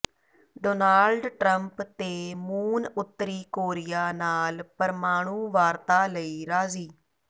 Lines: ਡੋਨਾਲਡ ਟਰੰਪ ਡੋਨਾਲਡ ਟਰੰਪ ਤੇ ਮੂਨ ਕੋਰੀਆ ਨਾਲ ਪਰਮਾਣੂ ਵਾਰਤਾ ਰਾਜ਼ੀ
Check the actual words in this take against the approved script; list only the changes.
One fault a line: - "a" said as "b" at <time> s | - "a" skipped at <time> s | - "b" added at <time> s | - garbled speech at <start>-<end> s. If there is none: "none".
- "ਡੋਨਾਲਡ ਟਰੰਪ" skipped at 1.8 s
- "ਉੱਤਰੀ" added at 2.9 s
- "ਲਈ" added at 6.1 s